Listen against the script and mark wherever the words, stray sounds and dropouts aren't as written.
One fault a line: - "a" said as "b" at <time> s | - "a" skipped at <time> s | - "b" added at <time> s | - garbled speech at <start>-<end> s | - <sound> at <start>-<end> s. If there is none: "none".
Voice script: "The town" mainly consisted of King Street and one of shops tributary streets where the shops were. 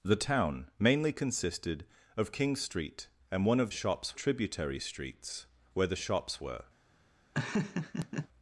- laugh at 7.3-8.3 s